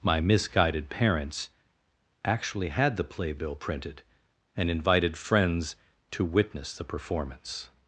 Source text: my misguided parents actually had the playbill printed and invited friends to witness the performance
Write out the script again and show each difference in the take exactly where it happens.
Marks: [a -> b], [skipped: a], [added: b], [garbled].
my misguided parents actually had the playbill printed and invited friends to witness the performance